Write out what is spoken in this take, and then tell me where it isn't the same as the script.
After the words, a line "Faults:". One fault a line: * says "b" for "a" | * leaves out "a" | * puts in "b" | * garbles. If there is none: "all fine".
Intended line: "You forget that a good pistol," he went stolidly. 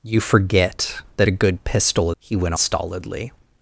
"You forget that a good pistol," he went stolidly.
Faults:
all fine